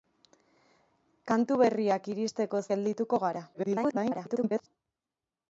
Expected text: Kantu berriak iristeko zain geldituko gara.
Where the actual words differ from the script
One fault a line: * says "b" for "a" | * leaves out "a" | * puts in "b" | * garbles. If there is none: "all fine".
* leaves out "zain"
* garbles